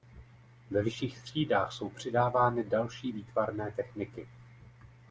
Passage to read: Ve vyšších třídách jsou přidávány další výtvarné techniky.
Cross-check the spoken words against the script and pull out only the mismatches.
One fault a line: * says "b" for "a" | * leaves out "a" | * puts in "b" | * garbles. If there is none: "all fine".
all fine